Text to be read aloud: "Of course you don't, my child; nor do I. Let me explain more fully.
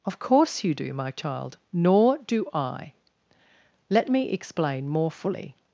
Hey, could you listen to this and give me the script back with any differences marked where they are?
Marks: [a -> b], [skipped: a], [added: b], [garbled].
"Of course you [don't, -> do] my child; nor do I. Let me explain more fully.